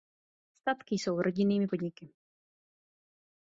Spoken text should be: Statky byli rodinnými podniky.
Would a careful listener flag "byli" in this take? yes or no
yes